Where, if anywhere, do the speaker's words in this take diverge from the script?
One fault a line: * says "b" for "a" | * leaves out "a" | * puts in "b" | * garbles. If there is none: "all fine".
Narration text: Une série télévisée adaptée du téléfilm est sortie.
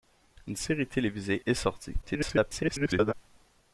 * leaves out "adaptée du téléfilm"
* garbles